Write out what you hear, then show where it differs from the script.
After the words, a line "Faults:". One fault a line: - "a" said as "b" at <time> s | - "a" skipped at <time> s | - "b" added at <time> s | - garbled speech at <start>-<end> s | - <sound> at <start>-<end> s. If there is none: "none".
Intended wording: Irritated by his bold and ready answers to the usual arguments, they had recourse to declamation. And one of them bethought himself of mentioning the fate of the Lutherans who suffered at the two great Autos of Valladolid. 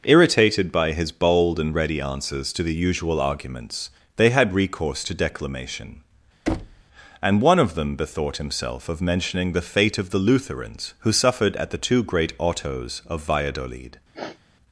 Irritated by his bold and ready answers to the usual arguments, they had recourse to declamation. And one of them bethought himself of mentioning the fate of the Lutherans who suffered at the two great Autos of Valladolid.
Faults:
- thud at 6.5-6.8 s
- sniff at 14.1-14.4 s